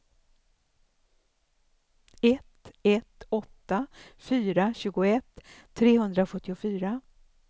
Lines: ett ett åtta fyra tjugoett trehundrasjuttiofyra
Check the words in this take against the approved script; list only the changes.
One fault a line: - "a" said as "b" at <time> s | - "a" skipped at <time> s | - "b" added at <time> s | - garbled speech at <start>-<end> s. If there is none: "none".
none